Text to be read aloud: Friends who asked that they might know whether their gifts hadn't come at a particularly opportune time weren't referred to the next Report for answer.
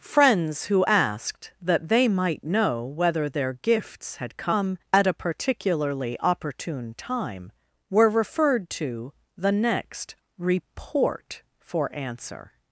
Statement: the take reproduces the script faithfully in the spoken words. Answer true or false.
false